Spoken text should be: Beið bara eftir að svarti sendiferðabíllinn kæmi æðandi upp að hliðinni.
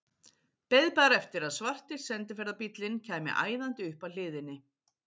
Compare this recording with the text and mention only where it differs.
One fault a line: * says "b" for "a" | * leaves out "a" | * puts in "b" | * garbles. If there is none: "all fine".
all fine